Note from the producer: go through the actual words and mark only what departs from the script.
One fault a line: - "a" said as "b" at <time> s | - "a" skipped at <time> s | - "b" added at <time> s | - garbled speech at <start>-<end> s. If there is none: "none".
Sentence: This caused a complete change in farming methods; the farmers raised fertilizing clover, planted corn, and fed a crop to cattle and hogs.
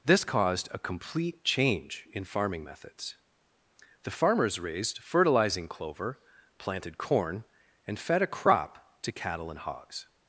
none